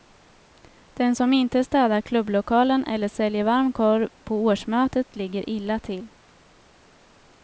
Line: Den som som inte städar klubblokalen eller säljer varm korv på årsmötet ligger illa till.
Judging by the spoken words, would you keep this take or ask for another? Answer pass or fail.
fail